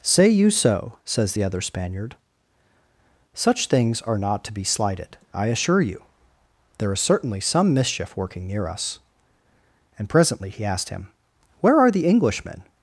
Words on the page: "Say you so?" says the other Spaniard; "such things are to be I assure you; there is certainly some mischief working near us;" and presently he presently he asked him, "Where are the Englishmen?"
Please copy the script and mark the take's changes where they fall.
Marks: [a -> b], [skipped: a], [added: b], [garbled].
"Say you so?" says the other Spaniard; "such things are [added: not] to be [added: slighted] I assure you; there is certainly some mischief working near us;" and presently he [skipped: presently he] asked him, "Where are the Englishmen?"